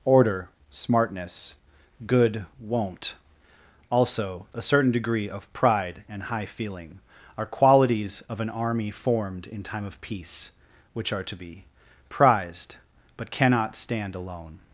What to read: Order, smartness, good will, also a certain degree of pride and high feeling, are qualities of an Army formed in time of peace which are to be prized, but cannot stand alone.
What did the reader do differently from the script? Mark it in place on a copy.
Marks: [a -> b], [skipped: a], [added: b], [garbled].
Order, smartness, good [will, -> won't] also a certain degree of pride and high feeling, are qualities of an Army formed in time of peace which are to be prized, but cannot stand alone.